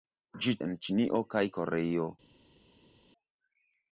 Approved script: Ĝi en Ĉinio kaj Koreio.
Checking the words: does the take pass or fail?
pass